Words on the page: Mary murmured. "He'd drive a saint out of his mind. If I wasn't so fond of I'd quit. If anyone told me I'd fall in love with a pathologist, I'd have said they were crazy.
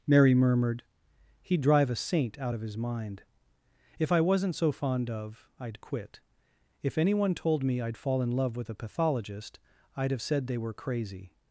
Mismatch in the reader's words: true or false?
false